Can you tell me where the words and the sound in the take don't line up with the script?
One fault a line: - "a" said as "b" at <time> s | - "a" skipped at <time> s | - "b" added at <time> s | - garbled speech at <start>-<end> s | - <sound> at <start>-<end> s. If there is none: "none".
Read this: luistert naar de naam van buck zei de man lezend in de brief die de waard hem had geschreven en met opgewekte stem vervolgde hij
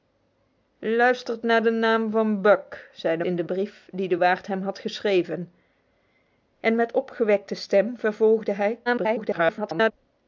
- "man lezend" skipped at 3.2 s
- garbled speech at 8.9-9.9 s